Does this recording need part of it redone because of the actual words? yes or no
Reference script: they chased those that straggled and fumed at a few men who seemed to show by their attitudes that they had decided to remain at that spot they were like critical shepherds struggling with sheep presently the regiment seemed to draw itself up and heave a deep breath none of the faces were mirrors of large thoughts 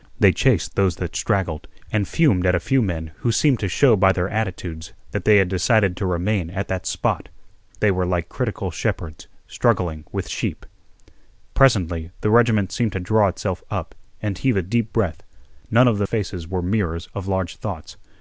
no